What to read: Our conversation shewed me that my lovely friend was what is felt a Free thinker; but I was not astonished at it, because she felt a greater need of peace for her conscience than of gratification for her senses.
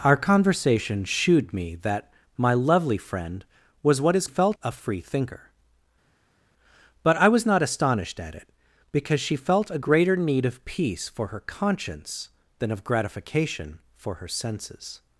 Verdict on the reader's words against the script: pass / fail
pass